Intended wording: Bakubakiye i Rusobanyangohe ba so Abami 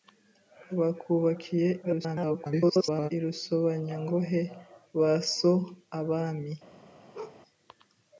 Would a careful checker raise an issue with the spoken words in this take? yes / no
yes